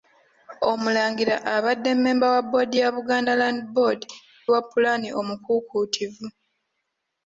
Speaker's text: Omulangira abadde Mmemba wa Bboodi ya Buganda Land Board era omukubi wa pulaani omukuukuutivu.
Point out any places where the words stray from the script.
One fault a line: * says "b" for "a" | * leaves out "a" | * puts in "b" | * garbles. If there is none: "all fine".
* leaves out "era omukubi"